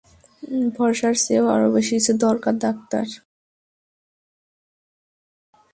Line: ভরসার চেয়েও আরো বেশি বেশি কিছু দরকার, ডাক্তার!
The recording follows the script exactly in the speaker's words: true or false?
false